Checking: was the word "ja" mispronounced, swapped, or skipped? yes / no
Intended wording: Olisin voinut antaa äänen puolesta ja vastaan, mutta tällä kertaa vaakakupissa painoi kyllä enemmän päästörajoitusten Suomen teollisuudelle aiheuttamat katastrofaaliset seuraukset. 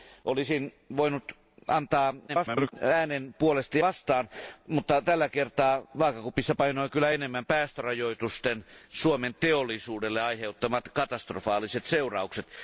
yes